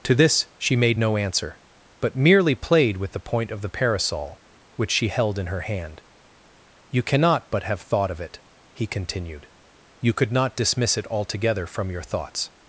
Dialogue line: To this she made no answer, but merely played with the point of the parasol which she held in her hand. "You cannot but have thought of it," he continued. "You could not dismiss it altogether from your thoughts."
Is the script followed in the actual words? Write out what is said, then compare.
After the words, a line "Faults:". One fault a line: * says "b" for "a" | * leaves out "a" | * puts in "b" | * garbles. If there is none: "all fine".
To this she made no answer, but merely played with the point of the parasol which she held in her hand. "You cannot but have thought of it," he continued. "You could not dismiss it altogether from your thoughts."
Faults:
all fine